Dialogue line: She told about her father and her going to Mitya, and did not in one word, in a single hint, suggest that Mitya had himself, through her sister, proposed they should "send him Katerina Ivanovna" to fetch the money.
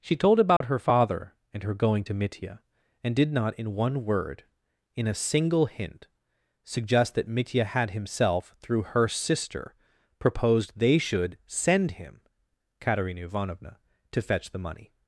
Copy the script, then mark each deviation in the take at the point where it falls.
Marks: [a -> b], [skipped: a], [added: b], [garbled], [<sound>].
She told about [dropout] her father and her going to Mitya, and did not in one word, in a single hint, suggest that Mitya had himself, through her sister, proposed they should "send him Katerina Ivanovna" to fetch the money.